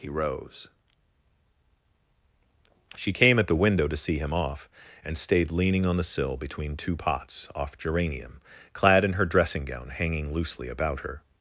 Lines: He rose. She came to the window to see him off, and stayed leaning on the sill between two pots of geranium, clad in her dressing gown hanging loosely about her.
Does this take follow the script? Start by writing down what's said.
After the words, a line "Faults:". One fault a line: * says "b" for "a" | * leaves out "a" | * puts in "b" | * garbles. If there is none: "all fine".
He rose. She came at the window to see him off, and stayed leaning on the sill between two pots off geranium, clad in her dressing gown hanging loosely about her.
Faults:
* says "at" for "to"
* says "off" for "of"